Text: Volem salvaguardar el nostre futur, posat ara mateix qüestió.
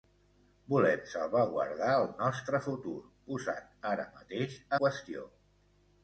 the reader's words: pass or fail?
pass